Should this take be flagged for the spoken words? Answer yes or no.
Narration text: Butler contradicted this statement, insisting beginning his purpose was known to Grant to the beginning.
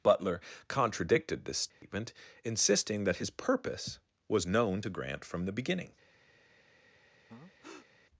yes